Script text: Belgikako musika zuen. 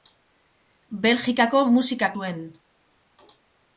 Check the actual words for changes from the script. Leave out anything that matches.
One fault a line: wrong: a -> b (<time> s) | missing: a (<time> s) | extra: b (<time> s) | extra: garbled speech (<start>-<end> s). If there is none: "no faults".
no faults